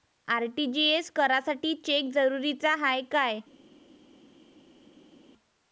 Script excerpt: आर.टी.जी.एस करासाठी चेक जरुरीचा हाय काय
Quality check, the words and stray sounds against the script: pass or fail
pass